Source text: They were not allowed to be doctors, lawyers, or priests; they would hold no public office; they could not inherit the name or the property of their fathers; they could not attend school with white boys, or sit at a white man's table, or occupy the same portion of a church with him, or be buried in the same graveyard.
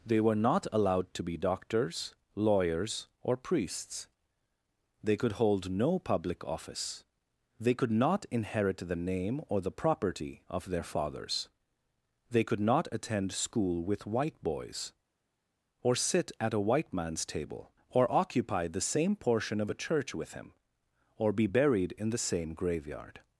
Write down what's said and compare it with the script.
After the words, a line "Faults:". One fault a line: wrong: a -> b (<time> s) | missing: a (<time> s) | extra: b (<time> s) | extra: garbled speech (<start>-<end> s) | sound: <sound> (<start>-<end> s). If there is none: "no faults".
They were not allowed to be doctors, lawyers, or priests; they could hold no public office; they could not inherit the name or the property of their fathers; they could not attend school with white boys, or sit at a white man's table, or occupy the same portion of a church with him, or be buried in the same graveyard.
Faults:
wrong: would -> could (5.2 s)